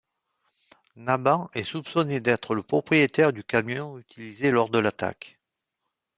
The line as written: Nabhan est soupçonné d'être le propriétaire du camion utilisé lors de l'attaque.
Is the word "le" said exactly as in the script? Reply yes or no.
yes